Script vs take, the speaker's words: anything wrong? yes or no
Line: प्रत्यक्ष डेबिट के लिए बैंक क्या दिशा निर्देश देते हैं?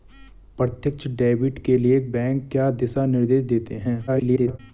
yes